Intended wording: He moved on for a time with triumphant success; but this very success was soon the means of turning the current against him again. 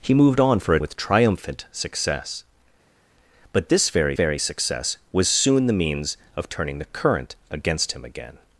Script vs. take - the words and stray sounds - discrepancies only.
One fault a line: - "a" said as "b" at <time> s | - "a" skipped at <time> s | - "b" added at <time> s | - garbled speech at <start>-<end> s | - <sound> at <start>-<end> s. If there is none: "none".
- "time" skipped at 0.8 s
- "very" added at 4.1 s